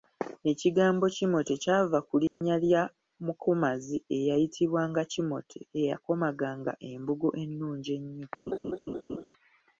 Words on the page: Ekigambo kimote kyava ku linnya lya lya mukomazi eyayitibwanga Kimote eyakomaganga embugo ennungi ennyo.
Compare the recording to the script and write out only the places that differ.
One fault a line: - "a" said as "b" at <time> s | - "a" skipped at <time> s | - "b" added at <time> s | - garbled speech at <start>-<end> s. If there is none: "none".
- "lya" skipped at 2.8 s